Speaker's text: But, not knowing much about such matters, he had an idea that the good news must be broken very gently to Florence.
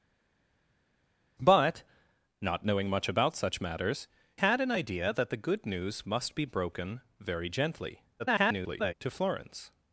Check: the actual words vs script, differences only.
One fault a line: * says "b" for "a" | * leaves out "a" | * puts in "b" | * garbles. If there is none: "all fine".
* leaves out "he"
* garbles